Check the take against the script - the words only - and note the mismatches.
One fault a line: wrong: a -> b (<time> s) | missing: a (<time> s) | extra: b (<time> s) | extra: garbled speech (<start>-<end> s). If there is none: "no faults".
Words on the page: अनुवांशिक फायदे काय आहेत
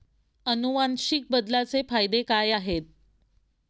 extra: बदलाचे (1.3 s)